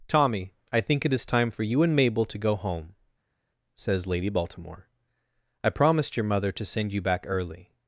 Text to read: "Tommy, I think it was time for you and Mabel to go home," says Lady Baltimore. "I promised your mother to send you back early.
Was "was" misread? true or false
true